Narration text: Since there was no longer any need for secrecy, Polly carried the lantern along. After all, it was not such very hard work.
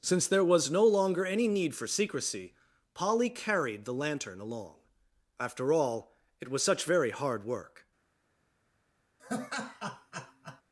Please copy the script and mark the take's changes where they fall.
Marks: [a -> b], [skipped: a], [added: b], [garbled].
Since there was no longer any need for secrecy, Polly carried the lantern along. After all, it was [skipped: not] such very hard work.